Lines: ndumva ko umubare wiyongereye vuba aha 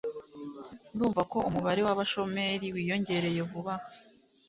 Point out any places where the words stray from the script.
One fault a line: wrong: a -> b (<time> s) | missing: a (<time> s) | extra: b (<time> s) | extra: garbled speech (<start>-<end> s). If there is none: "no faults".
extra: w'abashomeri (1.9 s)